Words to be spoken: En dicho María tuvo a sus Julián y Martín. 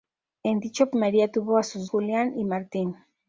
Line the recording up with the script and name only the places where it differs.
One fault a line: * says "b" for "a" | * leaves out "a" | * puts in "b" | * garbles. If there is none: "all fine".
all fine